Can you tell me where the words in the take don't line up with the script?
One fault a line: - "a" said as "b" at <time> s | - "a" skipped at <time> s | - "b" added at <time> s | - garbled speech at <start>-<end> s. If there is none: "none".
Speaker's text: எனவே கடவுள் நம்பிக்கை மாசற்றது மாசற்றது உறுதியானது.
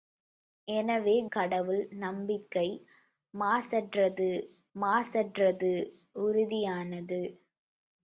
none